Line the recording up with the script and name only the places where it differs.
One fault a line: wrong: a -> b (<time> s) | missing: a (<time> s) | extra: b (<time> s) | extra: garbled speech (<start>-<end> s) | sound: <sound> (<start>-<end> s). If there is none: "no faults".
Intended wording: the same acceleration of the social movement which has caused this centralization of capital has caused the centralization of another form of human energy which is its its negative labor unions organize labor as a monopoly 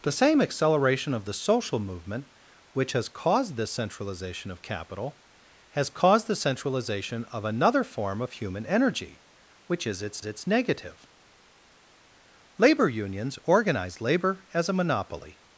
no faults